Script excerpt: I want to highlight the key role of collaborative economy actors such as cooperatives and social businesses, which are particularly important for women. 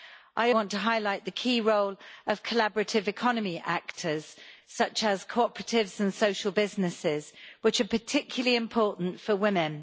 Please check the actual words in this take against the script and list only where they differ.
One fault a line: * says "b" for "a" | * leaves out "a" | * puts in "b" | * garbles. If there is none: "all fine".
all fine